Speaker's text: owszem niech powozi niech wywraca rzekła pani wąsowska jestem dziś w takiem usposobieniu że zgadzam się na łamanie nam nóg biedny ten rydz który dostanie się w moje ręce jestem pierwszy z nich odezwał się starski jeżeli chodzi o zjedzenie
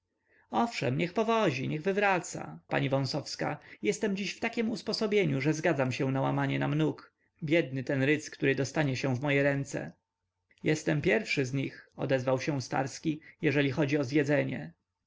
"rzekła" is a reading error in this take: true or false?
true